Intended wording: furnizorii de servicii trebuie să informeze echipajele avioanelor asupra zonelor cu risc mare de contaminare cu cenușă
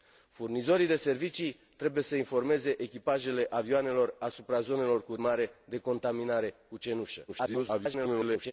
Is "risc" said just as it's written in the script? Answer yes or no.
no